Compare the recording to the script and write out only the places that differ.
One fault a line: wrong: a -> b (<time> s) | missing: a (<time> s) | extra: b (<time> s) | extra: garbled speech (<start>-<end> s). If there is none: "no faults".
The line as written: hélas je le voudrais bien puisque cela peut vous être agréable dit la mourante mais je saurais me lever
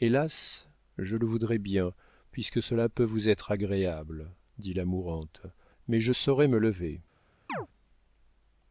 no faults